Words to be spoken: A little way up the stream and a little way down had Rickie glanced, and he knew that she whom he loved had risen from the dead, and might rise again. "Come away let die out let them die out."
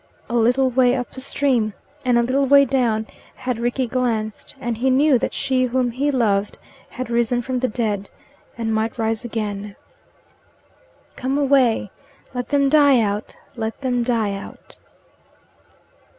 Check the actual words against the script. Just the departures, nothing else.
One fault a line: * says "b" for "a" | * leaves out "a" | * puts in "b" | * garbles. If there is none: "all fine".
* puts in "them"